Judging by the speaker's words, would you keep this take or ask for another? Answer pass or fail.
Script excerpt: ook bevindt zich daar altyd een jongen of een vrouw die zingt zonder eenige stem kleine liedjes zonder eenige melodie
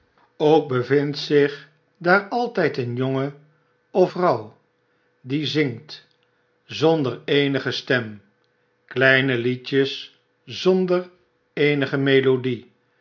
fail